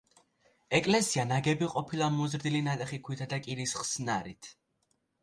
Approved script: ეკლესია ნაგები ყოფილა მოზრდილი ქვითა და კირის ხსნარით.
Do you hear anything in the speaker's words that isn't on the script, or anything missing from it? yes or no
yes